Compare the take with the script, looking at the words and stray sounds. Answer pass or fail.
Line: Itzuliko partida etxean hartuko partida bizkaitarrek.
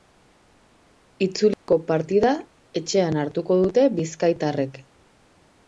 fail